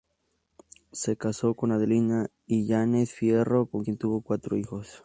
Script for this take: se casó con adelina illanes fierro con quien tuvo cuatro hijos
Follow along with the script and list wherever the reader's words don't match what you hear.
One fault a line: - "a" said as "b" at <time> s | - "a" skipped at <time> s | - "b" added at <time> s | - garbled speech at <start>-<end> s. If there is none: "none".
none